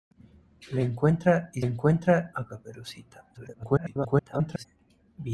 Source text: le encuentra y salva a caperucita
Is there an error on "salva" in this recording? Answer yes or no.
yes